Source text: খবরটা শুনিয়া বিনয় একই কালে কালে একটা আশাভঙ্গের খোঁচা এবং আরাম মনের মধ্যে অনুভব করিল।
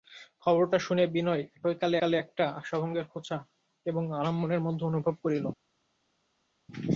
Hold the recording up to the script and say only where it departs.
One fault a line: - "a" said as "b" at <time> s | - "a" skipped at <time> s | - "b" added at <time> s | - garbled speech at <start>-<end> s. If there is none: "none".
none